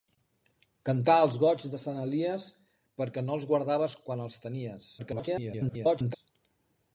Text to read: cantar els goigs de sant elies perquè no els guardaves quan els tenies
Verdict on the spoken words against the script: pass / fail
fail